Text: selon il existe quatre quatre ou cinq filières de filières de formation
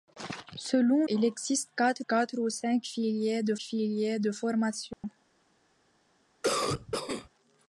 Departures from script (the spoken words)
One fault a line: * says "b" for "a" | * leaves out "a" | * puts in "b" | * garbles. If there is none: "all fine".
all fine